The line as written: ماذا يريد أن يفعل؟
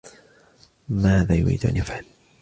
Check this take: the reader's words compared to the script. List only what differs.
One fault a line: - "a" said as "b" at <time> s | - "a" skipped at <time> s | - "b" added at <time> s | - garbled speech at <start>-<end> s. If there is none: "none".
none